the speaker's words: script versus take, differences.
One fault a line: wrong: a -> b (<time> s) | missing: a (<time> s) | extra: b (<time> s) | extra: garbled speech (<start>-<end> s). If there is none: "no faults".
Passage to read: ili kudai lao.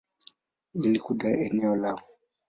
extra: eneo (1.4 s)